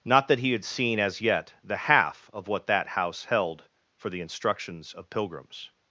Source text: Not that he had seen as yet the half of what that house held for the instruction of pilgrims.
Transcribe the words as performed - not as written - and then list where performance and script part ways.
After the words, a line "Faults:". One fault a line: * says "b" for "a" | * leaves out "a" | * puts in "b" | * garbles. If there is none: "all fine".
Not that he had seen as yet the half of what that house held for the instructions of pilgrims.
Faults:
* says "instructions" for "instruction"